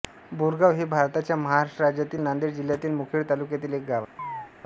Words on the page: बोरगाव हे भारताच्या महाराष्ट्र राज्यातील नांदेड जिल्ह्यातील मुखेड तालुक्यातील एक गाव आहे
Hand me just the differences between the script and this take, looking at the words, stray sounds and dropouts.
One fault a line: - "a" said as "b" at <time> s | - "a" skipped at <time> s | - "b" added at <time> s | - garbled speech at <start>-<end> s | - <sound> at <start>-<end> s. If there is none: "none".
- chirp at 4.2-4.5 s